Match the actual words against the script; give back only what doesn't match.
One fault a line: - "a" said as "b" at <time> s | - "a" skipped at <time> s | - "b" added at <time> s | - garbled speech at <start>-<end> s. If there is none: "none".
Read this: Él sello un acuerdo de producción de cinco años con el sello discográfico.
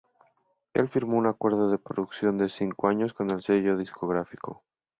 - "sello" said as "firmó" at 0.9 s